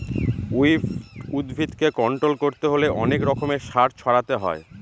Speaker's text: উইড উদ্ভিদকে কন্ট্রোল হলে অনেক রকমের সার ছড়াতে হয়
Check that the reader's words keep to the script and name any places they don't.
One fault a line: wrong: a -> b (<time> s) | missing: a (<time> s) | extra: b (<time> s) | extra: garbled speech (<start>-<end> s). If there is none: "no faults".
extra: করতে (2.4 s)